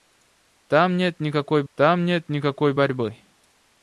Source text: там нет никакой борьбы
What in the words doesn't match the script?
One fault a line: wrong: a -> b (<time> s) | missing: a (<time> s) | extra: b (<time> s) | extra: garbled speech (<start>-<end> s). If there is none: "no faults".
extra: там нет никакой (1.7 s)